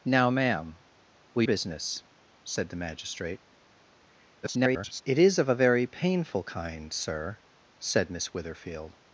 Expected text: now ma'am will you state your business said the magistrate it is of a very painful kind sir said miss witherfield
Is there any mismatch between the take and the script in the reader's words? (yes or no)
yes